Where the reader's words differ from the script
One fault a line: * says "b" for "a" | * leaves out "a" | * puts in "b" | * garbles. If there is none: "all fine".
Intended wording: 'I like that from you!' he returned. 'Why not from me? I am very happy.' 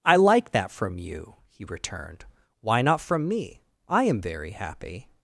all fine